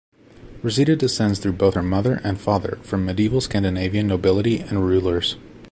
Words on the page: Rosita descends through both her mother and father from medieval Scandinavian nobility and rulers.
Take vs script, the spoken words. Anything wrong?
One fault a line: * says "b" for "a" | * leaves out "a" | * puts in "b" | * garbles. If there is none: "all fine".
all fine